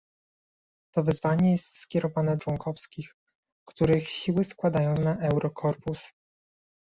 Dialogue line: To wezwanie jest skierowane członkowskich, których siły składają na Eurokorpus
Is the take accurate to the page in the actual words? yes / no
yes